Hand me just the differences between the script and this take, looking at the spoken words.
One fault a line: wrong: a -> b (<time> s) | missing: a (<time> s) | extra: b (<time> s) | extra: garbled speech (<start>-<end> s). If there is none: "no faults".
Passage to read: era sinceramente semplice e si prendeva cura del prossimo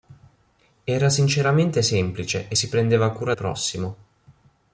missing: del (3.3 s)